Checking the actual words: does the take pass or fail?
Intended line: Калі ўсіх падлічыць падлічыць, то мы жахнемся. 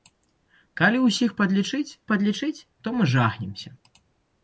pass